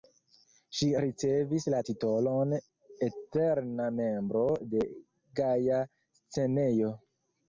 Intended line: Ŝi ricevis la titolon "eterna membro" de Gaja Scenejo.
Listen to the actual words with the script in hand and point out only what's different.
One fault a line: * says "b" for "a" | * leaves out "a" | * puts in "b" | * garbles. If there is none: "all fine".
all fine